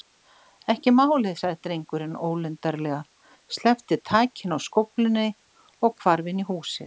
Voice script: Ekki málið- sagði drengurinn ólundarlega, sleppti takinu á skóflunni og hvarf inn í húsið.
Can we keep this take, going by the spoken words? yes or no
yes